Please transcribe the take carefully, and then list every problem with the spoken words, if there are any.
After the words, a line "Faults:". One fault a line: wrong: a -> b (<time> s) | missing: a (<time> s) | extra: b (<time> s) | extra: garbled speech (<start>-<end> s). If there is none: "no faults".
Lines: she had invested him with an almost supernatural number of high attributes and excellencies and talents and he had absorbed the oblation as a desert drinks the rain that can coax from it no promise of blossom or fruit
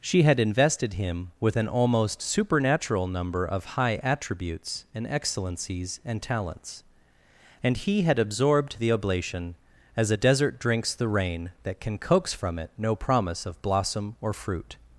she had invested him with an almost supernatural number of high attributes and excellencies and talents and he had absorbed the oblation as a desert drinks the rain that can coax from it no promise of blossom or fruit
Faults:
no faults